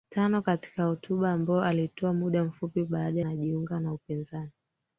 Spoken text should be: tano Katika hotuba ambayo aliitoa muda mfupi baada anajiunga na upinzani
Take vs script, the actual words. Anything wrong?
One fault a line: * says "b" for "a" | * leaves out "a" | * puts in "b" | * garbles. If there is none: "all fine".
all fine